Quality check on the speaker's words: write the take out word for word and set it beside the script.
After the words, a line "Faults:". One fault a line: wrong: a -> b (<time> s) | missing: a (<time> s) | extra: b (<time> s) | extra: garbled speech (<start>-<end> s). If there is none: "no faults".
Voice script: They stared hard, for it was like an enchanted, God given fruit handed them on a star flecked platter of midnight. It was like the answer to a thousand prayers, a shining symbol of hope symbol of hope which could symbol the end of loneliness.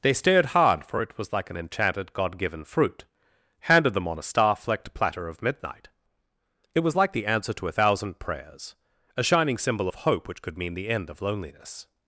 They stared hard, for it was like an enchanted, God given fruit handed them on a star flecked platter of midnight. It was like the answer to a thousand prayers, a shining symbol of hope which could mean the end of loneliness.
Faults:
missing: symbol of hope (10.3 s)
wrong: symbol -> mean (10.6 s)